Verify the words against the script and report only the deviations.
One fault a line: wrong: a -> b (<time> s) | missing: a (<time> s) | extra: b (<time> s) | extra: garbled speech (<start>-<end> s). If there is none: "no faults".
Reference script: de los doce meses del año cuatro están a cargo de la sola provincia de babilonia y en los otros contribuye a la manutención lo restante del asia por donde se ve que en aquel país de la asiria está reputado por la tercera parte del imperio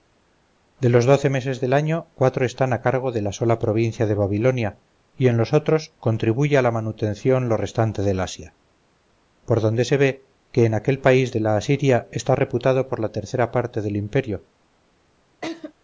no faults